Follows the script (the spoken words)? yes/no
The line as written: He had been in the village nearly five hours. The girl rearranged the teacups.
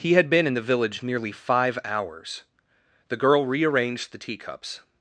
yes